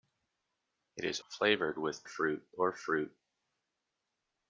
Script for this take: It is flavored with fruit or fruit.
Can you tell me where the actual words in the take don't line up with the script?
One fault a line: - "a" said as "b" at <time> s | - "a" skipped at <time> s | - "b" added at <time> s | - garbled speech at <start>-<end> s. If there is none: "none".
none